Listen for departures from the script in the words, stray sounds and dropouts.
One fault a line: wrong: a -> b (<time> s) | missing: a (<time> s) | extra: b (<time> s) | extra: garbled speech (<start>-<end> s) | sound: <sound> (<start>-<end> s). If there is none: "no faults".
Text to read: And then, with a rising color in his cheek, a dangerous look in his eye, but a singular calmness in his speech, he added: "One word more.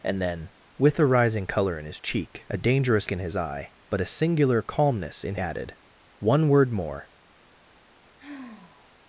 missing: look (3.1 s)
missing: his speech he (5.3 s)
sound: sigh (8.2-8.9 s)